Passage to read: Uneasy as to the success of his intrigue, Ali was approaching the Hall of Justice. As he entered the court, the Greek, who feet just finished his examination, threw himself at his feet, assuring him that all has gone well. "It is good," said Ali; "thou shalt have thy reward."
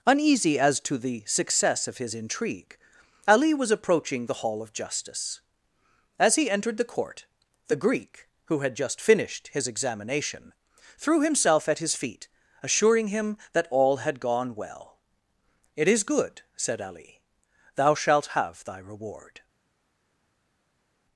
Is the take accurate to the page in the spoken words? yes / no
no